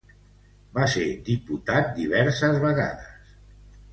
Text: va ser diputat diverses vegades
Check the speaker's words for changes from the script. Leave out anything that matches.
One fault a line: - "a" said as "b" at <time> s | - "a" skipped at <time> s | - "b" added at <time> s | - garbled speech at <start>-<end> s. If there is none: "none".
none